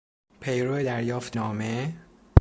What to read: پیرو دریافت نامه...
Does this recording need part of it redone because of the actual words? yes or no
no